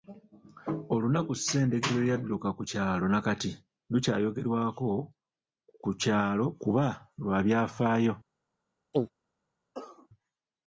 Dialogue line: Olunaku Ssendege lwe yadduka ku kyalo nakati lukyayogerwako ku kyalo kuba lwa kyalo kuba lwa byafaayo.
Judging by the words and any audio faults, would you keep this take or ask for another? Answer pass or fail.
fail